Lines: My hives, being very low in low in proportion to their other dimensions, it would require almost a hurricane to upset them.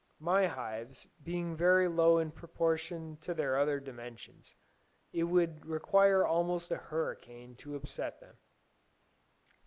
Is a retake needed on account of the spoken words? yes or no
yes